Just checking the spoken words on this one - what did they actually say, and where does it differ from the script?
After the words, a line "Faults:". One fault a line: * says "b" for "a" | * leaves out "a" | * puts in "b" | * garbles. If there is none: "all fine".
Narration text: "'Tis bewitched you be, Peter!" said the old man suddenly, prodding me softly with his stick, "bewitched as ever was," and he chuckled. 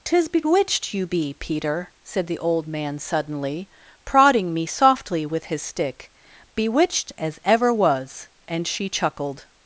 "'Tis bewitched you be, Peter!" said the old man suddenly, prodding me softly with his stick, "bewitched as ever was," and she chuckled.
Faults:
* says "she" for "he"